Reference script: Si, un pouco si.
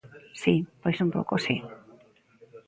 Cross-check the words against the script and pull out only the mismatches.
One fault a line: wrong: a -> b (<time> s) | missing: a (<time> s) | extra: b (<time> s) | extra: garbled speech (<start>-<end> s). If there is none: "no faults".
extra: pois (0.8 s)